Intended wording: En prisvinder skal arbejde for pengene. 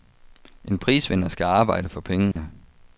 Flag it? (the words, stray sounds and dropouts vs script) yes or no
yes